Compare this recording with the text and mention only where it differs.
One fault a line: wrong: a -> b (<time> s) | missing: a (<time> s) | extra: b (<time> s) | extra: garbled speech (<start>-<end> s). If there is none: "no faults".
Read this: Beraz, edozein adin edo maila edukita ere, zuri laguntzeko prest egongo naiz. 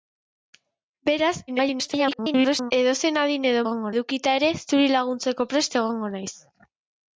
extra: garbled speech (1.5-2.7 s)
wrong: maila -> egongo (3.6 s)